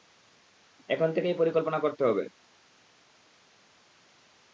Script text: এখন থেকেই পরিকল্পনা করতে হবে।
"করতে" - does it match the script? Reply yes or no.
yes